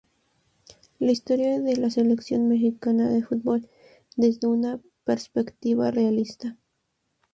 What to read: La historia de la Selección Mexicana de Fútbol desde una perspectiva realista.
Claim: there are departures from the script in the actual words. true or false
false